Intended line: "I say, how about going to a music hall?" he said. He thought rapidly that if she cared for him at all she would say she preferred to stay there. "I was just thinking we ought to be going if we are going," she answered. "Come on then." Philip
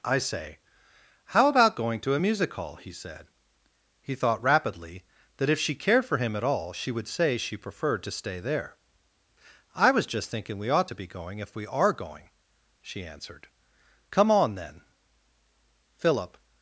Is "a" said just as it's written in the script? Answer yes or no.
yes